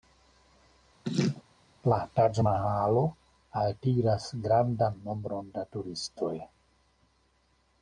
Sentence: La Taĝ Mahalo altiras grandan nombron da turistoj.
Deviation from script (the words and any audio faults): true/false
true